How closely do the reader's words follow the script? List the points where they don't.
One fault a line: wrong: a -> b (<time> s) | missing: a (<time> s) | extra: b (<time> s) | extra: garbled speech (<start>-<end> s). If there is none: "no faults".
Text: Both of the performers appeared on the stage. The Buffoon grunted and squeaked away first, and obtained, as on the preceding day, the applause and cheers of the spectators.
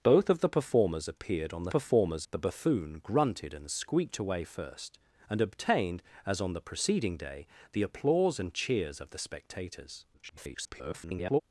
wrong: stage -> performers (1.7 s)
extra: garbled speech (10.1-11.4 s)